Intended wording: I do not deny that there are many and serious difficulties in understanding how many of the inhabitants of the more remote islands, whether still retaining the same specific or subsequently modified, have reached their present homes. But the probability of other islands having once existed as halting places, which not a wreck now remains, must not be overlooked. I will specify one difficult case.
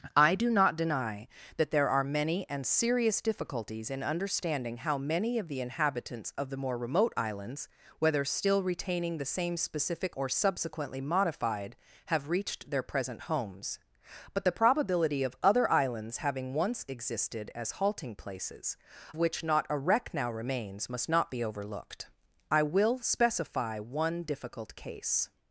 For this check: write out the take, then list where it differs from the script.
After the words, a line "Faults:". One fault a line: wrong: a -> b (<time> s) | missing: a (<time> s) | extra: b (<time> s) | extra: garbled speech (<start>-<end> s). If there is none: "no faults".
I do not deny that there are many and serious difficulties in understanding how many of the inhabitants of the more remote islands, whether still retaining the same specific or subsequently modified, have reached their present homes. But the probability of other islands having once existed as halting places, which not a wreck now remains, must not be overlooked. I will specify one difficult case.
Faults:
no faults